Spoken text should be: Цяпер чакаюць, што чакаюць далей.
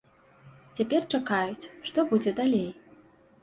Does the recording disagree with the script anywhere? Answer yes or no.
yes